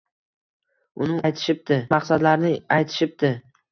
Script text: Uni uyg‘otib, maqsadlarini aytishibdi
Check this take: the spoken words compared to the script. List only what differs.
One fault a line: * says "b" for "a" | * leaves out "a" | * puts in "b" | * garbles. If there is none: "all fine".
* says "aytishibdi" for "uyg‘otib"